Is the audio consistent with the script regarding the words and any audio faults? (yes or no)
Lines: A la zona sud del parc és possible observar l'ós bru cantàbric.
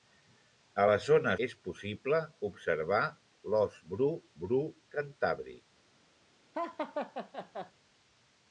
no